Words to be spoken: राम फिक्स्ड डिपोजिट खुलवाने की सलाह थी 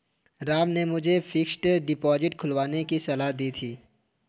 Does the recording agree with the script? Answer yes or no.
no